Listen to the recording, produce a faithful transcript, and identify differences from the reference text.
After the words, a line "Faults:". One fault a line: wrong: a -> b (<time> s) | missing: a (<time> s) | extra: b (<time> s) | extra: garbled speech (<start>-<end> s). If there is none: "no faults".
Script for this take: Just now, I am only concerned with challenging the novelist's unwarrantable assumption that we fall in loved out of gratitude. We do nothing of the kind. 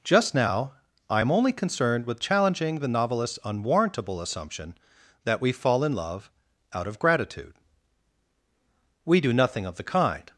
Just now, I am only concerned with challenging the novelist's unwarrantable assumption that we fall in love out of gratitude. We do nothing of the kind.
Faults:
wrong: loved -> love (5.9 s)